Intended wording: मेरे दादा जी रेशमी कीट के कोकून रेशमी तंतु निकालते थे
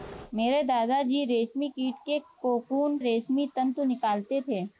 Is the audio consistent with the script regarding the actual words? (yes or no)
yes